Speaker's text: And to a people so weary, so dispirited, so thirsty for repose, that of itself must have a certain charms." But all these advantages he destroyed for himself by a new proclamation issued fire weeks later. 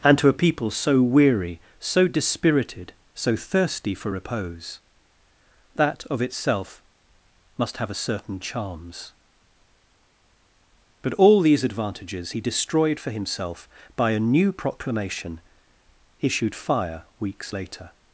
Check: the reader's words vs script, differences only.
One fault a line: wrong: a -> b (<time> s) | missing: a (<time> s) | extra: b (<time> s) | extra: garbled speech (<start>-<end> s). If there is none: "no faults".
no faults